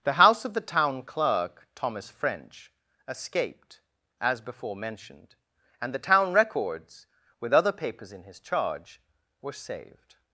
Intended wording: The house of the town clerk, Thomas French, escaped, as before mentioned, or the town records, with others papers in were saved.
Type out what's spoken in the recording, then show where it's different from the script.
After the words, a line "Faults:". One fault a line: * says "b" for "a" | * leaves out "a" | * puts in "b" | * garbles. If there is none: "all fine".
The house of the town clerk, Thomas French, escaped, as before mentioned, and the town records, with other papers in his charge, were saved.
Faults:
* says "and" for "or"
* says "other" for "others"
* puts in "his charge"